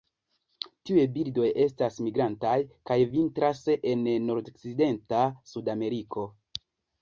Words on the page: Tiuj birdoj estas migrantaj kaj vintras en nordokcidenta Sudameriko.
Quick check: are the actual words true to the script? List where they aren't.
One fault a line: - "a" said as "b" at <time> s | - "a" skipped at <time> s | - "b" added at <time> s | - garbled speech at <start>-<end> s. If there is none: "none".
none